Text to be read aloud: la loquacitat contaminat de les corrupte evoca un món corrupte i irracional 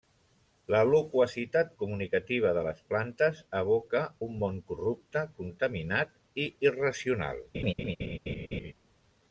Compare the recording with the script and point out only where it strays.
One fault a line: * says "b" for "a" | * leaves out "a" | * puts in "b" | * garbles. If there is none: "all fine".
* says "comunicativa" for "contaminat"
* says "plantes" for "corrupte"
* puts in "contaminat"